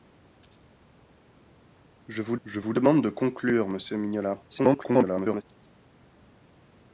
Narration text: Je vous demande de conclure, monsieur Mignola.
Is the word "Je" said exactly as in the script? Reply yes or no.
yes